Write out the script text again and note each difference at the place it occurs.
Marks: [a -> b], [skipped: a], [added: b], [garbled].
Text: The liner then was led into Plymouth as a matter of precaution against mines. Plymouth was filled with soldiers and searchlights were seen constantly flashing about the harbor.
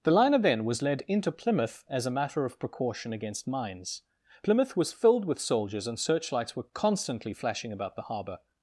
The liner then was led into Plymouth as a matter of precaution against mines. Plymouth was filled with soldiers and searchlights were [skipped: seen] constantly flashing about the harbor.